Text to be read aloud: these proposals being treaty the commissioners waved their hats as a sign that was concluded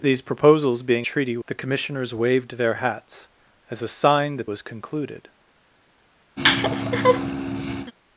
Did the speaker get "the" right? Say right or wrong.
right